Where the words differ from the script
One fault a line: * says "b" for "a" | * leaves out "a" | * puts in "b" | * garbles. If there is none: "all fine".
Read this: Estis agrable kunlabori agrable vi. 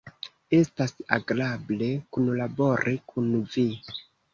* says "Estas" for "Estis"
* says "kun" for "agrable"